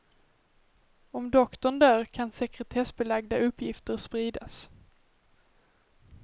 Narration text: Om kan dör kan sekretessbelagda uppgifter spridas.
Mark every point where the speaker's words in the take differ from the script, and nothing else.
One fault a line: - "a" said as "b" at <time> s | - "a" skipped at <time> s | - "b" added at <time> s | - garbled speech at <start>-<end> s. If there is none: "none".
- "kan" said as "doktorn" at 1.3 s